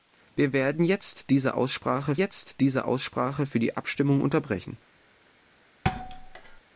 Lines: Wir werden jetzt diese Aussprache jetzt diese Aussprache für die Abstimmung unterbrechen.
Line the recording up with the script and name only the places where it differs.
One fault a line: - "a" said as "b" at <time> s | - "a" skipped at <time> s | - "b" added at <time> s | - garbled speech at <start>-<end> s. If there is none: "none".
none